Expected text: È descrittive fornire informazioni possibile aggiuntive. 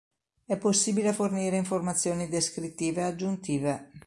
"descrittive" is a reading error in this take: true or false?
true